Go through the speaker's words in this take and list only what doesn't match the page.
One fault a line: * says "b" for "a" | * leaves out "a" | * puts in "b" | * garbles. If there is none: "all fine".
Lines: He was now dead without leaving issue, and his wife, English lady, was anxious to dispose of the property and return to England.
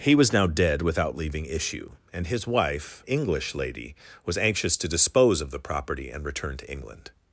all fine